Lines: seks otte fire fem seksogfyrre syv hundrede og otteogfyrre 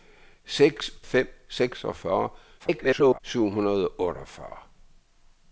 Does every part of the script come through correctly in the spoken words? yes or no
no